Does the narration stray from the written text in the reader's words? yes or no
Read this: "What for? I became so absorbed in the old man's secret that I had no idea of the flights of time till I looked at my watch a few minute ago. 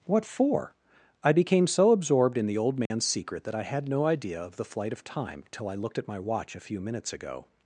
yes